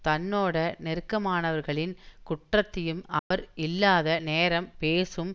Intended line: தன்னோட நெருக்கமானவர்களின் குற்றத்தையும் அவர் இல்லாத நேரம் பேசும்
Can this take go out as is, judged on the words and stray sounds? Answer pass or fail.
fail